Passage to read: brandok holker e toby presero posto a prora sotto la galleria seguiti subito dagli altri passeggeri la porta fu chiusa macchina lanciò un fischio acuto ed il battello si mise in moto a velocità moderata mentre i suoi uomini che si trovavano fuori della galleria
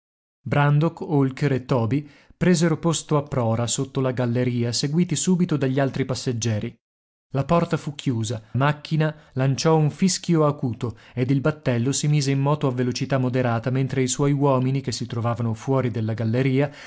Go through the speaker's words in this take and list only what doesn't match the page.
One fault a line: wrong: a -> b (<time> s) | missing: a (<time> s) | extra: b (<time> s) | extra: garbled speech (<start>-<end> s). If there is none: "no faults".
no faults